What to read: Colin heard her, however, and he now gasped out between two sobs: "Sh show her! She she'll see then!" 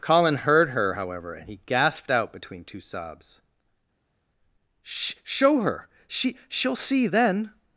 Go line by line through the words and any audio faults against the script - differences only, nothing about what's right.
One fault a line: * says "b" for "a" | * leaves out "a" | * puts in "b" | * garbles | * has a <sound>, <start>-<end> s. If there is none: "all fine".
* leaves out "now"